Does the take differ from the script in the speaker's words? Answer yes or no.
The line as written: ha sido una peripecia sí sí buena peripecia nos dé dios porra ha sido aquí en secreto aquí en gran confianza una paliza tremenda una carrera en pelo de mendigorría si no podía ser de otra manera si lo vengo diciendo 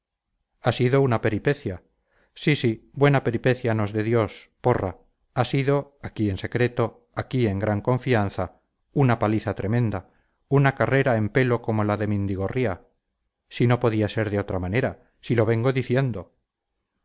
yes